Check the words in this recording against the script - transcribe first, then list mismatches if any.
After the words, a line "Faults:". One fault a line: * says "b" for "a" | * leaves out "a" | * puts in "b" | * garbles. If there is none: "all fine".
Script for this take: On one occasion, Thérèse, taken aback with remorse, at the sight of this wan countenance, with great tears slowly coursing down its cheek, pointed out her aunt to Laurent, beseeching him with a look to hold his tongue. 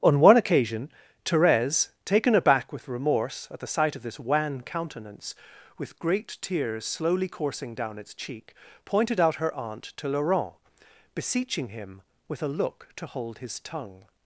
On one occasion, Thérèse, taken aback with remorse, at the sight of this wan countenance, with great tears slowly coursing down its cheek, pointed out her aunt to Laurent, beseeching him with a look to hold his tongue.
Faults:
all fine